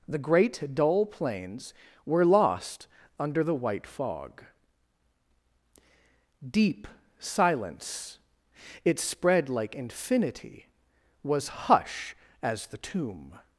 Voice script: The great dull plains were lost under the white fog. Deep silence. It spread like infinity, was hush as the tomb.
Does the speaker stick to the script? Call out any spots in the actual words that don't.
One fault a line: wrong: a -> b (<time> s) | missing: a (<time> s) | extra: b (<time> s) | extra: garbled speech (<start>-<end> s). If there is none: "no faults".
no faults